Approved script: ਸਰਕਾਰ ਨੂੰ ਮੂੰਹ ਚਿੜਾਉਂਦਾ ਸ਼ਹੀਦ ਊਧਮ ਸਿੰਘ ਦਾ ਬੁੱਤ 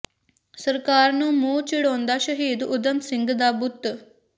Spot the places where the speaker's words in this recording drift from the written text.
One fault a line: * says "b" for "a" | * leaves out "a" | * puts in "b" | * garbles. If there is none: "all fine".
all fine